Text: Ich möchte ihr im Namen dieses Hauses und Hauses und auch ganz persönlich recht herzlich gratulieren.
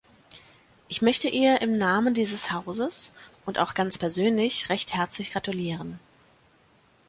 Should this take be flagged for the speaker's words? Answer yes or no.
yes